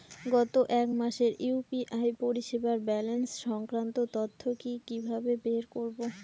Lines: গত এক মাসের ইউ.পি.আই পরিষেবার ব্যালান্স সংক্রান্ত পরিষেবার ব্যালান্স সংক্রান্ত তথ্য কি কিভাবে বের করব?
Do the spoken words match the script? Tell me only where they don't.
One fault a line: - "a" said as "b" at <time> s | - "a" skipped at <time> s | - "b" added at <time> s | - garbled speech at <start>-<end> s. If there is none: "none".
- "পরিষেবার ব্যালান্স সংক্রান্ত" skipped at 4.0 s